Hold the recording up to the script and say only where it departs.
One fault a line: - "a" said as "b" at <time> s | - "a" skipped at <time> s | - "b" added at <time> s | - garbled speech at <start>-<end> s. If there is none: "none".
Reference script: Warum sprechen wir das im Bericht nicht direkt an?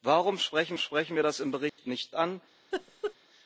- "sprechen" added at 0.8 s
- "direkt" skipped at 2.1 s